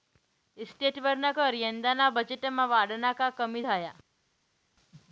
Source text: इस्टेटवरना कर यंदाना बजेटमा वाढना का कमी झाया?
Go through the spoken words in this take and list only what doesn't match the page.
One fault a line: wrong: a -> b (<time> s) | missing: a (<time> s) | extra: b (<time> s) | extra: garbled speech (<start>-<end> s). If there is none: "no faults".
no faults